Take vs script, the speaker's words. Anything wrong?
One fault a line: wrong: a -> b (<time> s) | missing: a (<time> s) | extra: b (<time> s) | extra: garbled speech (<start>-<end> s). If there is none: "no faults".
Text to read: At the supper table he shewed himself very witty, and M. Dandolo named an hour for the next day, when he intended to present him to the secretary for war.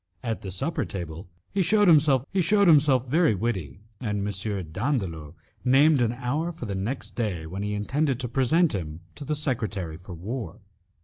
extra: he shewed himself (2.3 s)